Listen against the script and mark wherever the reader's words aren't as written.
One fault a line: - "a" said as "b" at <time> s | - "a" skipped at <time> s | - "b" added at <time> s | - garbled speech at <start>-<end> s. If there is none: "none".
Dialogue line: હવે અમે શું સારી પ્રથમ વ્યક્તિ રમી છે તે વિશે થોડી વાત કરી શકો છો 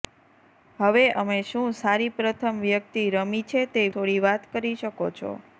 - "વિશે" skipped at 3.9 s